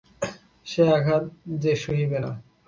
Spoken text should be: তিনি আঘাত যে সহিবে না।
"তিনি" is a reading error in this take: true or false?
true